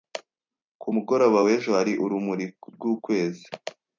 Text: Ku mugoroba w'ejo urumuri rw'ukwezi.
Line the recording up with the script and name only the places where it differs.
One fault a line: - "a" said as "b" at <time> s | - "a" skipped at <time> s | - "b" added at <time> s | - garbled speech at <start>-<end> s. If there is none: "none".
- "hari" added at 1.8 s